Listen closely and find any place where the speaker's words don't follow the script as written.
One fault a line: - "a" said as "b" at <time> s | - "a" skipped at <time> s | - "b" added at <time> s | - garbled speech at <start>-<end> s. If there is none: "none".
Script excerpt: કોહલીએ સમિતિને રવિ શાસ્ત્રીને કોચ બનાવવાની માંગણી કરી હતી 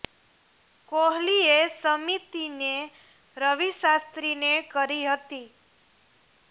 - "કોચ બનાવવાની માંગણી" skipped at 4.5 s